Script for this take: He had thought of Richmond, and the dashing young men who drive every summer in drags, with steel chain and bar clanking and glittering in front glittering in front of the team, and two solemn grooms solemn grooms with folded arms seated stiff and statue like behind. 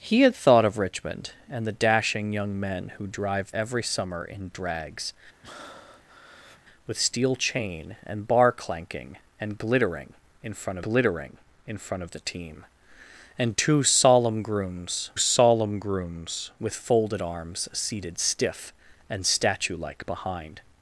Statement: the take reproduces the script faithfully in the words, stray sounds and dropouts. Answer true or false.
false